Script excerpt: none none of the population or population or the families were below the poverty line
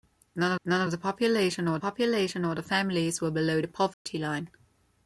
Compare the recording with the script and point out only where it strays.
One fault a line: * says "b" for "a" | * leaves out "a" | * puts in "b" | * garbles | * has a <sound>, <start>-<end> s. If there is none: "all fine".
* has a dropout, 3.9-4.1 s